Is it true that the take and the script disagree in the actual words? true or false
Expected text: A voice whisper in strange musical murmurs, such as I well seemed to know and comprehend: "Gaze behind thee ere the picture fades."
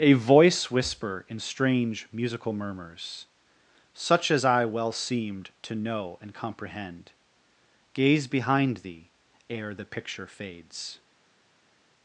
false